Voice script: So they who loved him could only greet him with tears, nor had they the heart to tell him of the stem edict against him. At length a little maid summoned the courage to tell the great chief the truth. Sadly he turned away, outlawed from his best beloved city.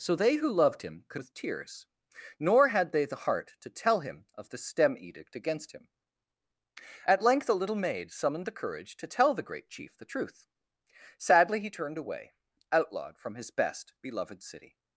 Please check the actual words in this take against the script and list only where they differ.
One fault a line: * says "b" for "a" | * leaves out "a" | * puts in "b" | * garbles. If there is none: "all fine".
* leaves out "only greet him"